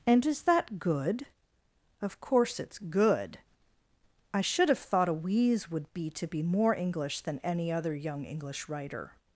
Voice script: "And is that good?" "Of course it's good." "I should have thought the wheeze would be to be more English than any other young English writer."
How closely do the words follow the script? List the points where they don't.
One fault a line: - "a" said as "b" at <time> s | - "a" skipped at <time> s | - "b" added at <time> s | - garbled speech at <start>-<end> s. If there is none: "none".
- "the" said as "a" at 5.1 s